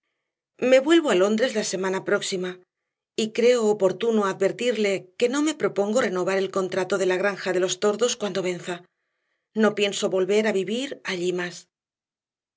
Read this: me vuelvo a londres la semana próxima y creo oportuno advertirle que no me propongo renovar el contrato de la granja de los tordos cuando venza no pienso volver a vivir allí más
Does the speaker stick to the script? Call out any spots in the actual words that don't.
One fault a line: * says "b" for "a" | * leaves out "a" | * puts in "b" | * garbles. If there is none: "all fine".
all fine